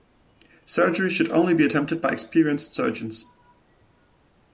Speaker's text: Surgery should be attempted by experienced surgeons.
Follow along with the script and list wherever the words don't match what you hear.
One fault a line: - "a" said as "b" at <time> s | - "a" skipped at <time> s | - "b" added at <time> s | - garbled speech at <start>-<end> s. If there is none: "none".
- "only" added at 1.3 s